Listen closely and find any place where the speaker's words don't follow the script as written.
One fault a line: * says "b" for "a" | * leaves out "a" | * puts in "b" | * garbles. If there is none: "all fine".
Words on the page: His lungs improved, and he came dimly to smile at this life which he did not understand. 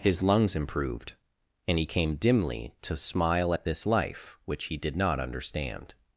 all fine